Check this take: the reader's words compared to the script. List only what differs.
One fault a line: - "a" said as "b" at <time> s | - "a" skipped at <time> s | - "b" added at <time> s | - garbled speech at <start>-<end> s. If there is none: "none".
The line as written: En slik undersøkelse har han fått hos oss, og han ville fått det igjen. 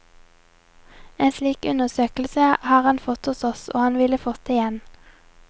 none